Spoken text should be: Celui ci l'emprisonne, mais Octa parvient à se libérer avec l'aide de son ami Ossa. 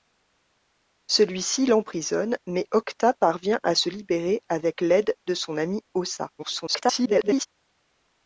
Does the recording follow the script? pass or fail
fail